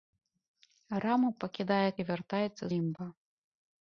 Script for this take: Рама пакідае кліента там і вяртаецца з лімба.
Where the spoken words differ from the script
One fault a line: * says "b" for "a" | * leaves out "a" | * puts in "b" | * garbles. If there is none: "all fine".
* leaves out "кліента там"
* leaves out "з"